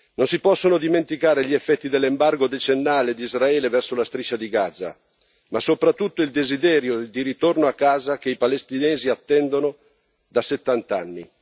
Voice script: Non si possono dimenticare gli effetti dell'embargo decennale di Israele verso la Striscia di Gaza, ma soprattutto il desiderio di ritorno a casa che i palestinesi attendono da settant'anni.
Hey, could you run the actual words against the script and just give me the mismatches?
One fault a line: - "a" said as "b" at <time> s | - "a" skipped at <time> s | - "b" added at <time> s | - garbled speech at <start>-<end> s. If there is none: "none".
none